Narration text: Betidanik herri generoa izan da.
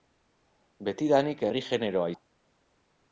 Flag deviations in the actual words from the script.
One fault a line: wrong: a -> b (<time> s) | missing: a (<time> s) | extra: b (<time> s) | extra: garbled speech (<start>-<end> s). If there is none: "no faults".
missing: izan (2.1 s)